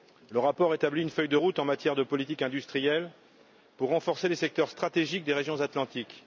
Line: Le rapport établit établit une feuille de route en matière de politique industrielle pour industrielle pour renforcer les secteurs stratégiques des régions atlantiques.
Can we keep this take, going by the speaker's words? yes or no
no